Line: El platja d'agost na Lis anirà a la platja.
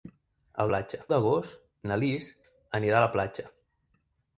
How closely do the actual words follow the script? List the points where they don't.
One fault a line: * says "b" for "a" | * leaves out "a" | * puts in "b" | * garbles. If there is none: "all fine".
all fine